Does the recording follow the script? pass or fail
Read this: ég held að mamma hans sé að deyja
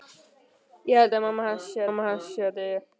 fail